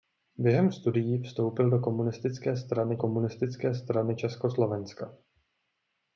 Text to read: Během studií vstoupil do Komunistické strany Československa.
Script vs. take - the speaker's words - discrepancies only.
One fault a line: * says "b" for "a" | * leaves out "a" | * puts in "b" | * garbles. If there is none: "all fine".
* puts in "Komunistické strany"